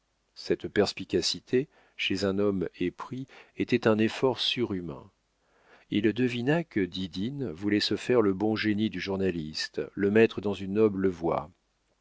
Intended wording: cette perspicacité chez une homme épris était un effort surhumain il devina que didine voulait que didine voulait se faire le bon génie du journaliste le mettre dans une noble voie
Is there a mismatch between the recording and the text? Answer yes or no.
yes